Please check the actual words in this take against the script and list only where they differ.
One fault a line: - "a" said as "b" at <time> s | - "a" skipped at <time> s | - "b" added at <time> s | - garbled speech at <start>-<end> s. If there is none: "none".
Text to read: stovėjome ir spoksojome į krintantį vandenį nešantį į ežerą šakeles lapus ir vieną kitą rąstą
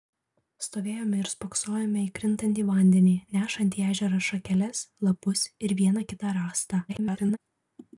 - garbled speech at 6.9-7.4 s